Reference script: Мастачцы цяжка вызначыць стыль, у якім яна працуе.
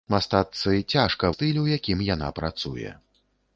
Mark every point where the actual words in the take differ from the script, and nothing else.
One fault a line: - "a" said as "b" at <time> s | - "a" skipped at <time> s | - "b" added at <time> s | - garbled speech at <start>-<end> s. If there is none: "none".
- "вызначыць" skipped at 1.3 s